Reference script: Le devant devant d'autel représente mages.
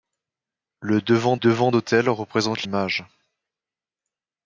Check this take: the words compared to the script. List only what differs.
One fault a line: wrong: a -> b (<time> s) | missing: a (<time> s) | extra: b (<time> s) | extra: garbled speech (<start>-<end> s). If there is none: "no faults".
no faults